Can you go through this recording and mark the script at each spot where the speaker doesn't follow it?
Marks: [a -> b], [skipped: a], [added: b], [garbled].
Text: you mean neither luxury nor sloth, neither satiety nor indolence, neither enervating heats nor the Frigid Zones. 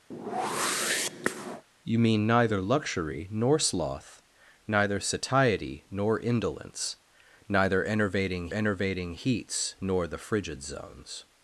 you mean neither luxury nor sloth, neither satiety nor indolence, neither enervating [added: enervating] heats nor the Frigid Zones.